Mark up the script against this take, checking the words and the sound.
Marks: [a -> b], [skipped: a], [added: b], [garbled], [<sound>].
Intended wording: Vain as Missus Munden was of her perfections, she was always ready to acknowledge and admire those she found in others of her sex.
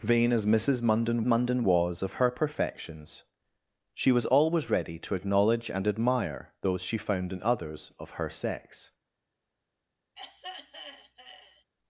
Vain as Missus Munden [added: Munden] was of her perfections, she was always ready to acknowledge and admire those she found in others of her sex. [throat clearing]